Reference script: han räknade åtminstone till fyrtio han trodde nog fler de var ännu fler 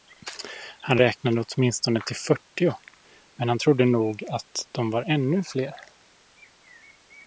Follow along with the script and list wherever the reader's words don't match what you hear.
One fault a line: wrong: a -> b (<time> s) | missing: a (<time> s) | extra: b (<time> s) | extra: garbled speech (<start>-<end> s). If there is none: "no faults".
extra: men (3.3 s)
wrong: fler -> att (4.3 s)